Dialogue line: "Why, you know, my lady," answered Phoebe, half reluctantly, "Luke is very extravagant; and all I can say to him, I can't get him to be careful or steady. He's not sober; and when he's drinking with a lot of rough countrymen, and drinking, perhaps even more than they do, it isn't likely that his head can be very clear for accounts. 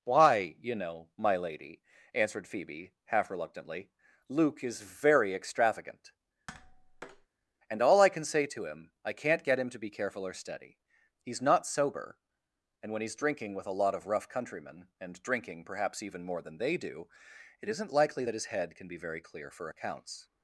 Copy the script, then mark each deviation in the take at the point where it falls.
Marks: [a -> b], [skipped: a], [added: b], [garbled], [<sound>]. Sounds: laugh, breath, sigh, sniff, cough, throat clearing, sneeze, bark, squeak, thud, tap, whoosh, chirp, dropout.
"Why, you know, my lady," answered Phoebe, half reluctantly, "Luke is very extravagant; [tap] and all I can say to him, I can't get him to be careful or steady. He's not sober; and when he's drinking with a lot of rough countrymen, and drinking, perhaps even more than they do, it isn't likely that his head can be very clear for accounts.